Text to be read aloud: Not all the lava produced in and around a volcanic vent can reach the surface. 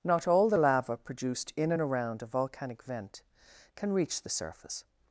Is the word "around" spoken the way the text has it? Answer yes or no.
yes